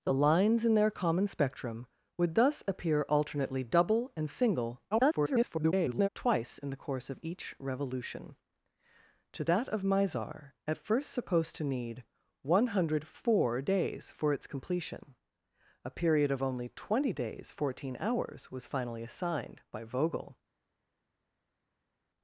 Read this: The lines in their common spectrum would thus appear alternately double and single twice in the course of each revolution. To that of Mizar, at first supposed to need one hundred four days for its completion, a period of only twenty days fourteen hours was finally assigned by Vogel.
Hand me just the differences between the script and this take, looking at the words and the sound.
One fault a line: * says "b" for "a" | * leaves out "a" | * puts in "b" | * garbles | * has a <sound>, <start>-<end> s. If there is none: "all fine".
* garbles